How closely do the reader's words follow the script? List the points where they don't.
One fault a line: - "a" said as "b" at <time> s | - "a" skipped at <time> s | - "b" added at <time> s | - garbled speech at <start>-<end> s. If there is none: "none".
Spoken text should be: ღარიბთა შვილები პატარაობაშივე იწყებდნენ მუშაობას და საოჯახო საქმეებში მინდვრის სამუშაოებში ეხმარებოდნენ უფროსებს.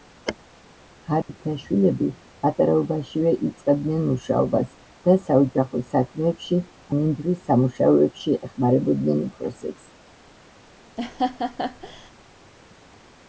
none